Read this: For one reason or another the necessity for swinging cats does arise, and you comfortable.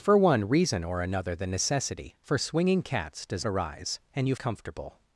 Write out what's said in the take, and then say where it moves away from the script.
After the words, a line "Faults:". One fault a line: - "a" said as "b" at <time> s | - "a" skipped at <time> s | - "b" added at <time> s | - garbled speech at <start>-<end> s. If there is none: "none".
For one reason or another the necessity for swinging cats does arise, and you comfortable.
Faults:
none